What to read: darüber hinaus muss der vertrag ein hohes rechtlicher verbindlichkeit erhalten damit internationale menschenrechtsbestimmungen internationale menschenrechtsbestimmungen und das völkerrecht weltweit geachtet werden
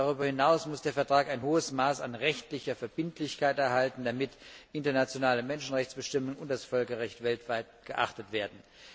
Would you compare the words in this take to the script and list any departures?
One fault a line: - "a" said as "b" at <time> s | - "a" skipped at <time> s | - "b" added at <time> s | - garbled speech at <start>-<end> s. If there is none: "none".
- "maß an" added at 1.7 s
- "internationale menschenrechtsbestimmungen" skipped at 6.4 s